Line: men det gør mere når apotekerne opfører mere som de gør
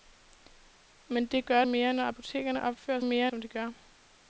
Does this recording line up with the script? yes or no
yes